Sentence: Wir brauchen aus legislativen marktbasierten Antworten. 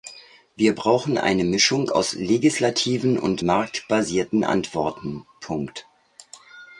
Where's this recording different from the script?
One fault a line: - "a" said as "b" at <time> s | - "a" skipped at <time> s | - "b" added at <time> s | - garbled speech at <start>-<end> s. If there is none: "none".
- "eine Mischung" added at 1.2 s
- "und" added at 3.2 s